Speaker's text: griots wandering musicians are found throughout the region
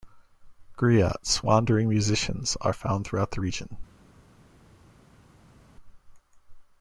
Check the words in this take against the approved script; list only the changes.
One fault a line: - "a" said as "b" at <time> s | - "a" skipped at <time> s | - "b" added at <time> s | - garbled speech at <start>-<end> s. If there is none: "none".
none